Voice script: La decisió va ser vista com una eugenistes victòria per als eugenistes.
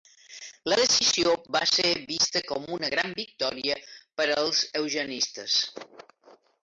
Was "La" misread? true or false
false